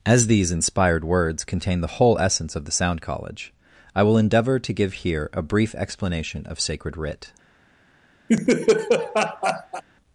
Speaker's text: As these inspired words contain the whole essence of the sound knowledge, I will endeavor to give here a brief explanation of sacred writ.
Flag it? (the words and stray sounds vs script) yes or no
yes